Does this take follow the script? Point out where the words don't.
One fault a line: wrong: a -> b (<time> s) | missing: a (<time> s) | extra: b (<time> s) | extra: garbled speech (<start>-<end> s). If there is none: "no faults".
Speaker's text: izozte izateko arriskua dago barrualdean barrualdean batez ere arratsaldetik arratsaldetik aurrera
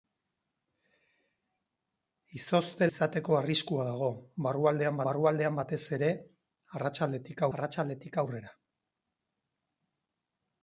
no faults